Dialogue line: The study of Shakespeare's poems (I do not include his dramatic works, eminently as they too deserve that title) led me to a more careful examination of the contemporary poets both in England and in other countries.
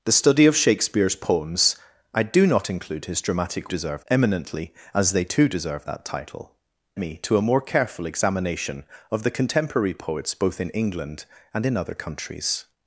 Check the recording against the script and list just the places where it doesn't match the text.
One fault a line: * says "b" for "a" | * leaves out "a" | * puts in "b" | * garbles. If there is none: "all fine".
* says "deserve" for "works"
* leaves out "led"